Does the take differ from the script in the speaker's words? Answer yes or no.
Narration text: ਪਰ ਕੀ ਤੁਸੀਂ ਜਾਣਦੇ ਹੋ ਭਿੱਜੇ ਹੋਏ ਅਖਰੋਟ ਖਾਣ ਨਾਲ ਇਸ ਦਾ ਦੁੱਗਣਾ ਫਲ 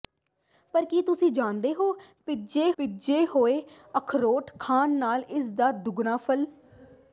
yes